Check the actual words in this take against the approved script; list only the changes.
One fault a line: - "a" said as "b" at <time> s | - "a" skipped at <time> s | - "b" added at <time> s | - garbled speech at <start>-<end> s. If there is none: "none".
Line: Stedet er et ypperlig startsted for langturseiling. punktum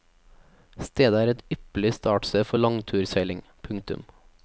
none